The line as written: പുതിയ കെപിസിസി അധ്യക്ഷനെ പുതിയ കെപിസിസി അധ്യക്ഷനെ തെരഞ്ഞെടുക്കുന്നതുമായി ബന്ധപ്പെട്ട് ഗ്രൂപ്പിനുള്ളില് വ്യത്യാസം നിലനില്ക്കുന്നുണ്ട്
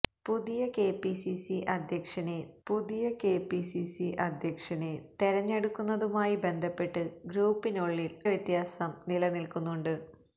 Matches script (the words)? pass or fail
pass